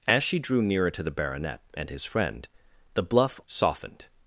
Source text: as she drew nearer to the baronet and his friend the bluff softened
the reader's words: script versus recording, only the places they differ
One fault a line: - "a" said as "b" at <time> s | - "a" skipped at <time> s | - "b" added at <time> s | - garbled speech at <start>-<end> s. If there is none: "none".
none